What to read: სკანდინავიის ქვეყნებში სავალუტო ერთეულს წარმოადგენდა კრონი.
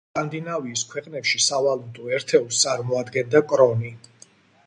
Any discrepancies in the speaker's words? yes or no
no